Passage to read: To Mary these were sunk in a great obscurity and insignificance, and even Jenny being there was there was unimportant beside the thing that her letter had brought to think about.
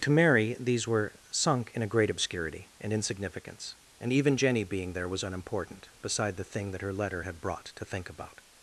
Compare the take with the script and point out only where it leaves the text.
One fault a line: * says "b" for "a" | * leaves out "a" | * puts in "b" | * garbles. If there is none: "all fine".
* leaves out "there was"